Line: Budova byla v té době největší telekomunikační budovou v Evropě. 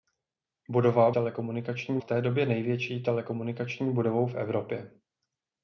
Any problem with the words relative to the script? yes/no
yes